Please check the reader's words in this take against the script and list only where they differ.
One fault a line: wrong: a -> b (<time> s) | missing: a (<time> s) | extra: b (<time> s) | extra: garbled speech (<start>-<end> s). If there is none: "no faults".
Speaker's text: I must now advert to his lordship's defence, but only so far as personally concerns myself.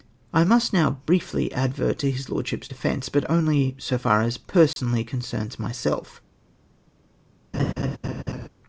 extra: briefly (1.1 s)